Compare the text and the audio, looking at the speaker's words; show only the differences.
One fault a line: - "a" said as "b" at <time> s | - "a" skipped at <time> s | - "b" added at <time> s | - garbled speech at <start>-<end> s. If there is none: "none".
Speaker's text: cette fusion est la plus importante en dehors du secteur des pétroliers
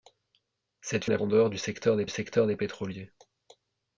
- "fusion" skipped at 1.1 s
- "plus importante" skipped at 1.2 s
- "secteur des" added at 2.1 s